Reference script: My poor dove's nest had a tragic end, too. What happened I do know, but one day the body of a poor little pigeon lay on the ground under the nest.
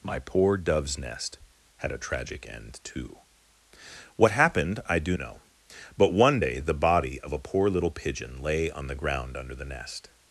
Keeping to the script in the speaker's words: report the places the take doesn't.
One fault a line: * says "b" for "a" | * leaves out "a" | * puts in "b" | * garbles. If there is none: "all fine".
all fine